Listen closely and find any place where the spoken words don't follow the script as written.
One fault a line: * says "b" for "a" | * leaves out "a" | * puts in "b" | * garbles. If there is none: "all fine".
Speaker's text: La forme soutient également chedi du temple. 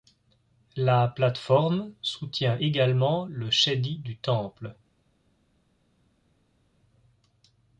* puts in "plate"
* puts in "le"